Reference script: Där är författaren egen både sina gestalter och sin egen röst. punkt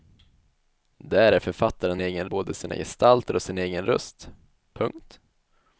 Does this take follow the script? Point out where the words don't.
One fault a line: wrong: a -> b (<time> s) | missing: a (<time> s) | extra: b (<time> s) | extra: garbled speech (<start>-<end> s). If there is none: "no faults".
no faults